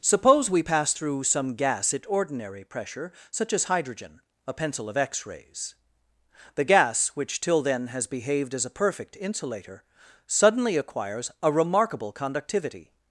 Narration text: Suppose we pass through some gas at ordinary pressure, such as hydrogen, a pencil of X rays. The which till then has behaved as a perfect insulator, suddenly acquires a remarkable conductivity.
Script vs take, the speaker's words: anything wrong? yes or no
yes